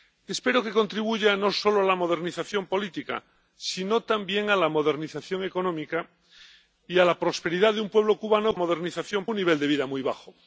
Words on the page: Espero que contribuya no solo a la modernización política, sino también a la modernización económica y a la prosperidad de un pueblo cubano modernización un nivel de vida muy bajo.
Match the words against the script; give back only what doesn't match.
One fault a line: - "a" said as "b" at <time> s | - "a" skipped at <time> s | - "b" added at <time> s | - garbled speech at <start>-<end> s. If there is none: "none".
none